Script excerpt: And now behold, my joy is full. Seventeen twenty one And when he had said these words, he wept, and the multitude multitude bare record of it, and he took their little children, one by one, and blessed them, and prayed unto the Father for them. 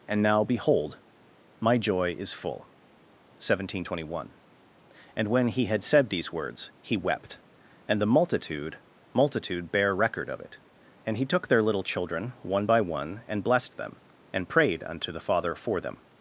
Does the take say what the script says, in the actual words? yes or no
yes